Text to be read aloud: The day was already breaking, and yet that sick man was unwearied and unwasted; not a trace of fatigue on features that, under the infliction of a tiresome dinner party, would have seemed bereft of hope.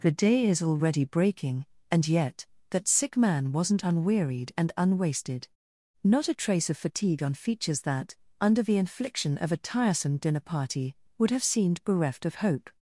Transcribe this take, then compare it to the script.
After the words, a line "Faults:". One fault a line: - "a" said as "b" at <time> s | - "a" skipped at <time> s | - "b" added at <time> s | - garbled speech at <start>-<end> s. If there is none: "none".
The day is already breaking, and yet that sick man wasn't unwearied and unwasted; not a trace of fatigue on features that, under the infliction of a tiresome dinner party, would have seemed bereft of hope.
Faults:
- "was" said as "is" at 0.5 s
- "was" said as "wasn't" at 3.5 s